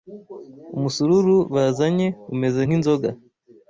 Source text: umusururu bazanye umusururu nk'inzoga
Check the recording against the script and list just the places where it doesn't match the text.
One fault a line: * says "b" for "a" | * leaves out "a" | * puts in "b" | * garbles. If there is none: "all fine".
* says "umeze" for "umusururu"